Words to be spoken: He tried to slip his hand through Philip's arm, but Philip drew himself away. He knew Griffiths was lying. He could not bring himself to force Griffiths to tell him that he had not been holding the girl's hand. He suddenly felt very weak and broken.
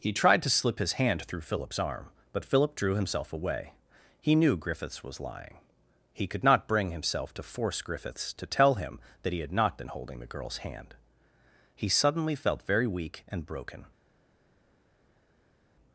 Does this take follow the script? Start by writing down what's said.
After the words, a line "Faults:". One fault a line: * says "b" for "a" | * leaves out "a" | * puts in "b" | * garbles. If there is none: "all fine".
He tried to slip his hand through Philip's arm, but Philip drew himself away. He knew Griffiths was lying. He could not bring himself to force Griffiths to tell him that he had not been holding the girl's hand. He suddenly felt very weak and broken.
Faults:
all fine